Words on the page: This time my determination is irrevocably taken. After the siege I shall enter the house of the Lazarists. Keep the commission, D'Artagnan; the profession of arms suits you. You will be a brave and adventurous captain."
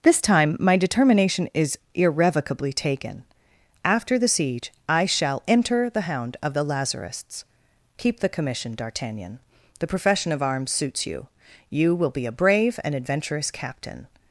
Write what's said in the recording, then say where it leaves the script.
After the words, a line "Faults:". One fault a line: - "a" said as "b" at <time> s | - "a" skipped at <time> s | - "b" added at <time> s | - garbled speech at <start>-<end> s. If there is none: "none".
This time my determination is irrevocably taken. After the siege I shall enter the hound of the Lazarists. Keep the commission, D'Artagnan; the profession of arms suits you. You will be a brave and adventurous captain."
Faults:
- "house" said as "hound" at 6.0 s